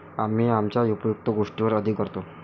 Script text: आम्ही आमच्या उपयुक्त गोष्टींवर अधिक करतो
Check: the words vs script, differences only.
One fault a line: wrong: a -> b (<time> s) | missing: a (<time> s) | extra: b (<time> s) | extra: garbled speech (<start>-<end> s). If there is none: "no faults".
no faults